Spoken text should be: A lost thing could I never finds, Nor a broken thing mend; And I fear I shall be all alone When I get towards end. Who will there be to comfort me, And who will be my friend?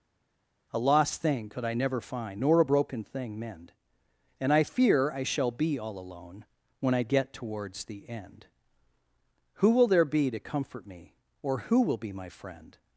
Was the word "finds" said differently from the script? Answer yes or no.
yes